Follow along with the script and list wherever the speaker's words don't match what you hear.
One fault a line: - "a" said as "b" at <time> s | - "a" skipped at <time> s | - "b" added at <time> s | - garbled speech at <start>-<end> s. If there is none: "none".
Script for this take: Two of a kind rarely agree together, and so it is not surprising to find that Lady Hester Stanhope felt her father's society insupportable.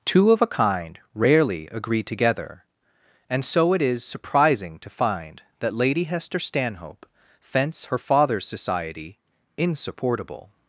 - "not" skipped at 4.0 s
- "felt" said as "fence" at 7.4 s